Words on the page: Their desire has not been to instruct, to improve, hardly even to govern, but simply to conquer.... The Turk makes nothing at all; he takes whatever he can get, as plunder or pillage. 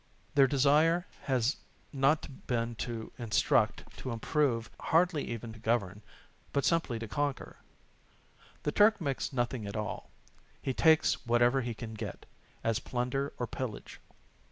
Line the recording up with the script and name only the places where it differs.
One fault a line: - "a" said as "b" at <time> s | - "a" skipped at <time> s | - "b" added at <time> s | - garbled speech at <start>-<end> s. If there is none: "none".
none